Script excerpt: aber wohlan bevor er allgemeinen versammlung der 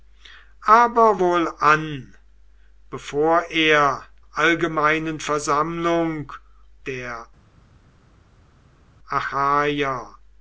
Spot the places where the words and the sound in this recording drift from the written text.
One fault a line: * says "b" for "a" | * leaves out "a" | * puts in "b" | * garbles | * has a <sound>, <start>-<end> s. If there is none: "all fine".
all fine